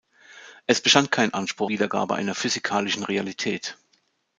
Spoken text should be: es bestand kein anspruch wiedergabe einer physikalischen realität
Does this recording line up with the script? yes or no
yes